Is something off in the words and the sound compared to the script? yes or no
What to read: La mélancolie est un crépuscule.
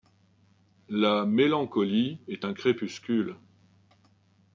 no